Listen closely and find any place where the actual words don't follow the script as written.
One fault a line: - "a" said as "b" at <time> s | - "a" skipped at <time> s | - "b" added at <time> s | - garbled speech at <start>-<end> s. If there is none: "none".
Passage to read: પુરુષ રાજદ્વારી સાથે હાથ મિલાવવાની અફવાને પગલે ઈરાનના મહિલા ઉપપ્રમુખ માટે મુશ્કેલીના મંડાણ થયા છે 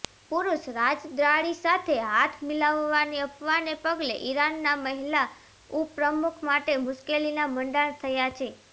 none